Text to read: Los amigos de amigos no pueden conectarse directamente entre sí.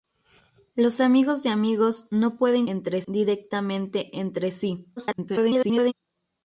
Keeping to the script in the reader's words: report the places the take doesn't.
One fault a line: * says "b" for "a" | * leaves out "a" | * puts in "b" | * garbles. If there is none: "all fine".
* says "entre" for "conectarse"
* garbles